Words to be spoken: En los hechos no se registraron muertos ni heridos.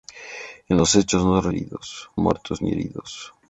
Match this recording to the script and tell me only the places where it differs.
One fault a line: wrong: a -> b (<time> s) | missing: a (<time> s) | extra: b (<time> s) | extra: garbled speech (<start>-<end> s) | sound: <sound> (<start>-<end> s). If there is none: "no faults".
wrong: registraron -> heridos (1.5 s)